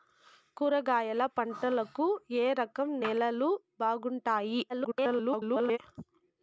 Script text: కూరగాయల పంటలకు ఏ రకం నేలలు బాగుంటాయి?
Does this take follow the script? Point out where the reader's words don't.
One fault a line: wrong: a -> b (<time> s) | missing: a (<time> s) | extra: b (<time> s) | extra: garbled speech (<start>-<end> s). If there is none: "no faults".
extra: garbled speech (4.7-5.8 s)